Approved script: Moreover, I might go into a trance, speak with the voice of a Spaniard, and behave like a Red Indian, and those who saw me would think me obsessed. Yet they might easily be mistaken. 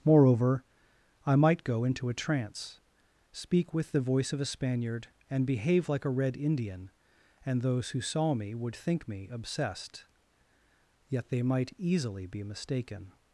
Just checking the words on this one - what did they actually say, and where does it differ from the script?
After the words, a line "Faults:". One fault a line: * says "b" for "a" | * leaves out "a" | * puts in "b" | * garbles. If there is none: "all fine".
Moreover, I might go into a trance, speak with the voice of a Spaniard, and behave like a Red Indian, and those who saw me would think me obsessed. Yet they might easily be mistaken.
Faults:
all fine